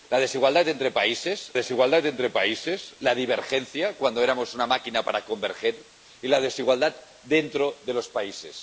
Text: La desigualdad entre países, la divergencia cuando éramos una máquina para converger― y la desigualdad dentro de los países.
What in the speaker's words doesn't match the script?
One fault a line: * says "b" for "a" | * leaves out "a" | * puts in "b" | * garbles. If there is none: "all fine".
* puts in "desigualdad entre países"